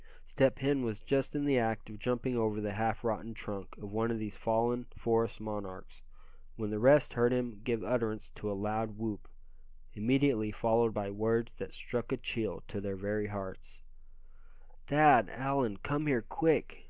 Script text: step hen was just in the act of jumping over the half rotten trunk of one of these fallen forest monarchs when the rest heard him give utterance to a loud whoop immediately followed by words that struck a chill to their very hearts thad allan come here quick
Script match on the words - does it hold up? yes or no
yes